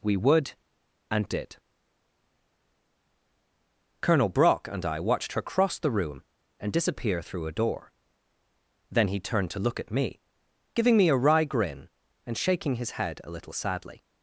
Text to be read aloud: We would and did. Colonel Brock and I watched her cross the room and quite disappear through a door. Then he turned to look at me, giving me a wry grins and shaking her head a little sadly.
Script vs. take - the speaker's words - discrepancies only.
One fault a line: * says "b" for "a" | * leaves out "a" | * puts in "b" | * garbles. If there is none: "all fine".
* leaves out "quite"
* says "grin" for "grins"
* says "his" for "her"